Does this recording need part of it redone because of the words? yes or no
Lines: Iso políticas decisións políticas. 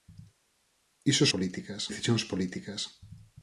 no